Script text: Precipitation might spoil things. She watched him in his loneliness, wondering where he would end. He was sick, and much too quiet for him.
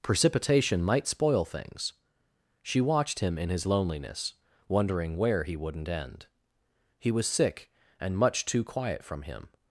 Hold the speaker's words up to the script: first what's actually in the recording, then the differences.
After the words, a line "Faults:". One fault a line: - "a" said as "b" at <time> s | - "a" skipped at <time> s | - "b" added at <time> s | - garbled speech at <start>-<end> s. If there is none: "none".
Precipitation might spoil things. She watched him in his loneliness, wondering where he wouldn't end. He was sick, and much too quiet from him.
Faults:
- "would" said as "wouldn't" at 5.5 s
- "for" said as "from" at 9.0 s